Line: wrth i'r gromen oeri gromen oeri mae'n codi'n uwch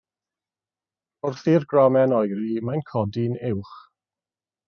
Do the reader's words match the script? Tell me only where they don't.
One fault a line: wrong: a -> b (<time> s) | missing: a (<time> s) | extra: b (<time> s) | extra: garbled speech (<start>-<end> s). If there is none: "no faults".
missing: gromen oeri (2.5 s)